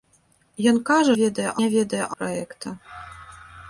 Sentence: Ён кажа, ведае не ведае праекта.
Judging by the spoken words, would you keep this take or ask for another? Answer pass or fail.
pass